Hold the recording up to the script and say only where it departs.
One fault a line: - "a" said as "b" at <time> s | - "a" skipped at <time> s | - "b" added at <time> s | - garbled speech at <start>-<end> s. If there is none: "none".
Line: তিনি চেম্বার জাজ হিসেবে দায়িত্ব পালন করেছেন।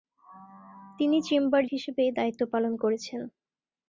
- "জাজ" skipped at 1.6 s